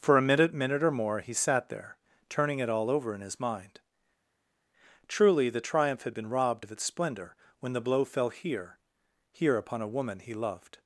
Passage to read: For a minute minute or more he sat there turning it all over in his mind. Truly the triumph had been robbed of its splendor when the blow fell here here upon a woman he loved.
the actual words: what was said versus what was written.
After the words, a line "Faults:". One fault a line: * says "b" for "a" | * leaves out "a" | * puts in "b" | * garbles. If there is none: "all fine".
For a minute minute or more he sat there turning it all over in his mind. Truly the triumph had been robbed of its splendor when the blow fell here here upon a woman he loved.
Faults:
all fine